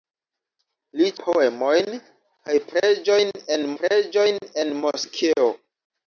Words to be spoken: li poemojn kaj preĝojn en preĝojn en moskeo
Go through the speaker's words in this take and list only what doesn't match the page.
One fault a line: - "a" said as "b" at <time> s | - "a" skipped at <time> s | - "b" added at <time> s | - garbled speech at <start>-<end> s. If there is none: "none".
none